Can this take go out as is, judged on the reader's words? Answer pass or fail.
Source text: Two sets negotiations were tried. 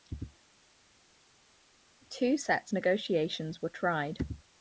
pass